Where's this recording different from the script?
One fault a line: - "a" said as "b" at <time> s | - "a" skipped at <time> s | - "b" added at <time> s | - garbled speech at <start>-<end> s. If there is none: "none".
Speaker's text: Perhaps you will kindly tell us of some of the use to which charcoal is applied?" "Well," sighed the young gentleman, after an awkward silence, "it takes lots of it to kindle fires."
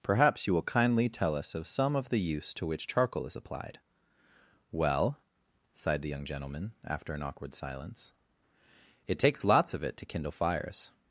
none